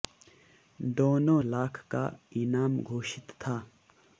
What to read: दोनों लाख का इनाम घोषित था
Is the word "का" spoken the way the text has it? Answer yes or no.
yes